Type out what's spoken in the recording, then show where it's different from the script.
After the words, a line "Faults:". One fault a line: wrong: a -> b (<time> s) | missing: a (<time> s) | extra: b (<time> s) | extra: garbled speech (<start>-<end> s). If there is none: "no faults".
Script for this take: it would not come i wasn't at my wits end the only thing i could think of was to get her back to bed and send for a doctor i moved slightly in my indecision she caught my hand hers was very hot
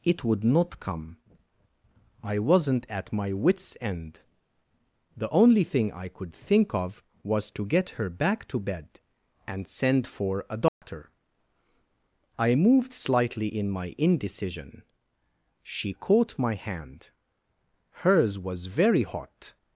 it would not come i wasn't at my wits end the only thing i could think of was to get her back to bed and send for a doctor i moved slightly in my indecision she caught my hand hers was very hot
Faults:
no faults